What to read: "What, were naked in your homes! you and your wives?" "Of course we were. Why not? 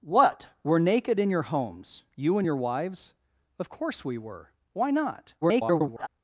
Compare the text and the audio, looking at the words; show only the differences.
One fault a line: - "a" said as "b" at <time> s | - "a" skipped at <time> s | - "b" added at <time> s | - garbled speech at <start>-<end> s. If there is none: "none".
- garbled speech at 5.4-6.1 s